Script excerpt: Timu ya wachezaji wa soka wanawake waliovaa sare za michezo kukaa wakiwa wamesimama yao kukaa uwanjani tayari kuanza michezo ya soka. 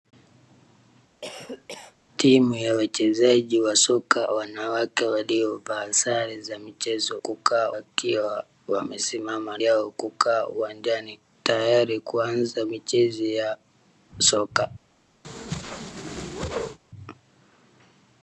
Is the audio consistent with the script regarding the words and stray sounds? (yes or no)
no